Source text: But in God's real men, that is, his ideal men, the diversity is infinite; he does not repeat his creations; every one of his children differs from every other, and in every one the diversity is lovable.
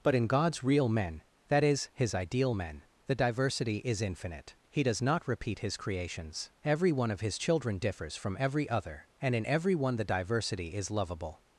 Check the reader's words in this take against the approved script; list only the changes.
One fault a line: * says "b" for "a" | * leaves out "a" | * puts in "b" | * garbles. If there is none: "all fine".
all fine